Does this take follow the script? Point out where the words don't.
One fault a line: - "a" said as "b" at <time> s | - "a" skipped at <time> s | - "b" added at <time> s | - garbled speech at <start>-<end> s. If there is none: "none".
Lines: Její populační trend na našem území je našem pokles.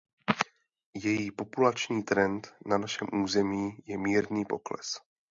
- "našem" said as "mírný" at 4.0 s